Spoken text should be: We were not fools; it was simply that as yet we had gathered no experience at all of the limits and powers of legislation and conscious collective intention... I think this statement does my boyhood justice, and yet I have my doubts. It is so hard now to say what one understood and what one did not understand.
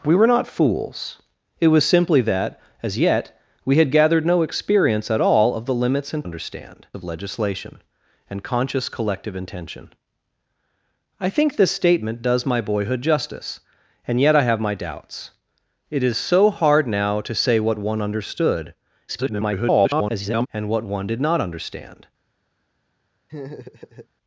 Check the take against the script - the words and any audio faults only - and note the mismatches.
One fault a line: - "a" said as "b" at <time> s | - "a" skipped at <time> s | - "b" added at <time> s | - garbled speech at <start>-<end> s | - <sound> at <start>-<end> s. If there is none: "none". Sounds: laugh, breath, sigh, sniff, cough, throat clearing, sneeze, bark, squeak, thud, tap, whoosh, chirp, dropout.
- "powers" said as "understand" at 6.2 s
- garbled speech at 19.1-20.5 s
- laugh at 23.3-24.1 s